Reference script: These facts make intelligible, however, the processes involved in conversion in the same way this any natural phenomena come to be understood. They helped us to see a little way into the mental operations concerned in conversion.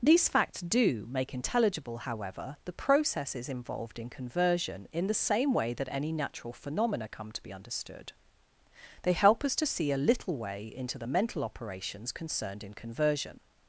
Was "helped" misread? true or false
true